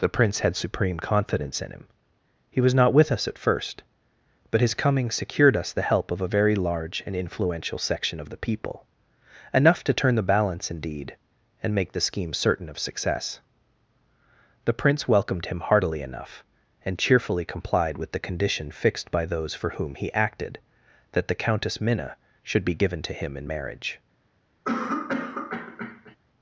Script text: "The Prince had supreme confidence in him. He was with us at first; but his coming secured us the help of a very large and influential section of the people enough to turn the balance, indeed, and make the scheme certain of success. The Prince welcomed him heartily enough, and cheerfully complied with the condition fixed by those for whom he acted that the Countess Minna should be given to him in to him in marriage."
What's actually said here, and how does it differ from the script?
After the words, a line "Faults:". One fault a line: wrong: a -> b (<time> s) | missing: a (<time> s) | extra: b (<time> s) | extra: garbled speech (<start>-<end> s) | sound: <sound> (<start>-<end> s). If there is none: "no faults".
"The Prince had supreme confidence in him. He was not with us at first; but his coming secured us the help of a very large and influential section of the people enough to turn the balance, indeed, and make the scheme certain of success. The Prince welcomed him heartily enough, and cheerfully complied with the condition fixed by those for whom he acted that the Countess Minna should be given to him in marriage."
Faults:
extra: not (2.7 s)
missing: to him in (23.5 s)
sound: cough (24.6-26.2 s)